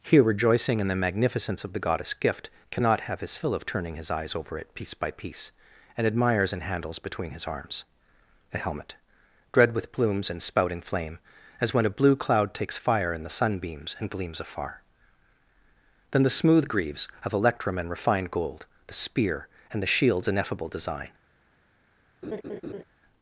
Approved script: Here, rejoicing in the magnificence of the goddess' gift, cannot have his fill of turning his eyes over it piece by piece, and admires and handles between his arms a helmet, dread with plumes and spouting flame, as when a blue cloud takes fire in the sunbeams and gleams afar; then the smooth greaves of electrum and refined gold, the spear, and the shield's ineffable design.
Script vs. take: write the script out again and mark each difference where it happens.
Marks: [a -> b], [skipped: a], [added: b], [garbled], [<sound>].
Here, rejoicing in the magnificence of the goddess' gift, cannot have his fill of turning his eyes over it piece by piece, and admires and handles between his arms a helmet, dread with plumes and spouting flame, as when a blue cloud takes fire in the sunbeams and gleams afar; then the smooth greaves of electrum and refined gold, the spear, and the shield's ineffable design. [laugh]